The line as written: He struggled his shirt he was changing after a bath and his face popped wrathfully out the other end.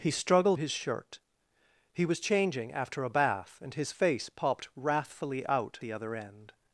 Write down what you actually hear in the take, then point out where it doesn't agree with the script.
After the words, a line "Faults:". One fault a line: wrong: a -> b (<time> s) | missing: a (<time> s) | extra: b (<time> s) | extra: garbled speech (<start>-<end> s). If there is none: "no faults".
He struggled his shirt he was changing after a bath and his face popped wrathfully out the other end.
Faults:
no faults